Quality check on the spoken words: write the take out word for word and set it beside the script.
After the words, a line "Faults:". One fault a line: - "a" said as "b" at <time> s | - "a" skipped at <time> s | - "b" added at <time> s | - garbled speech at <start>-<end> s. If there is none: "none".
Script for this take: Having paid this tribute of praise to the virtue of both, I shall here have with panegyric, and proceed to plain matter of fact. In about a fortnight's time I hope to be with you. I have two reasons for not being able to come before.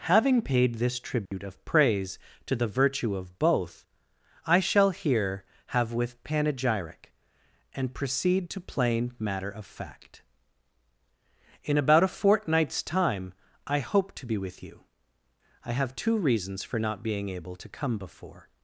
Having paid this tribute of praise to the virtue of both, I shall here have with panegyric, and proceed to plain matter of fact. In about a fortnight's time I hope to be with you. I have two reasons for not being able to come before.
Faults:
none